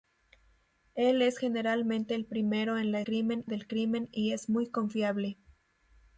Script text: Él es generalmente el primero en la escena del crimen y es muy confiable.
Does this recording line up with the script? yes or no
no